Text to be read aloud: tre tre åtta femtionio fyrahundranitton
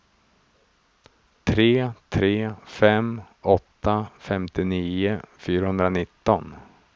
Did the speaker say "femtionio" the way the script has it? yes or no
yes